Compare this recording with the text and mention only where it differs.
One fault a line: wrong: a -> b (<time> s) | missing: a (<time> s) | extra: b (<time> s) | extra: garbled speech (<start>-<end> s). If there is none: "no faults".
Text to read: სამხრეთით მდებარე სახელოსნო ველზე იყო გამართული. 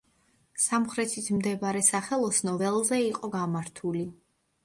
no faults